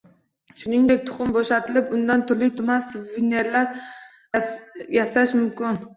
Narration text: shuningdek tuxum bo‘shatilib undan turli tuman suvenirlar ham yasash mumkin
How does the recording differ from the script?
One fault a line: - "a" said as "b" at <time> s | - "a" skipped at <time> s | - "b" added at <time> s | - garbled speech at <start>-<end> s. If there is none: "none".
- "ham" skipped at 3.9 s